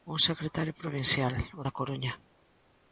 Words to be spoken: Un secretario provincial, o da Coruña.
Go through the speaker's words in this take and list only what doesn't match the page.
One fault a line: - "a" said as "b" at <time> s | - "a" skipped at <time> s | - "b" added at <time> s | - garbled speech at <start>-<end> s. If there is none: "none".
none